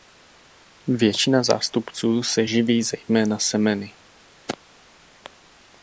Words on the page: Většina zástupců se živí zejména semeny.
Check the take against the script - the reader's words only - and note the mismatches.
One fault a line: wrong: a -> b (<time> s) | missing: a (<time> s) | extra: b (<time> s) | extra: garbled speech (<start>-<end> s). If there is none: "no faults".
no faults